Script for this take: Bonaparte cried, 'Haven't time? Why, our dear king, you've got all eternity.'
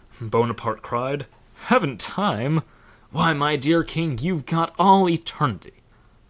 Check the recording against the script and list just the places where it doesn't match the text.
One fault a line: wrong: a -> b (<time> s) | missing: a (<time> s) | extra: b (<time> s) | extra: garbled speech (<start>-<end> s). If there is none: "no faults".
wrong: our -> my (3.3 s)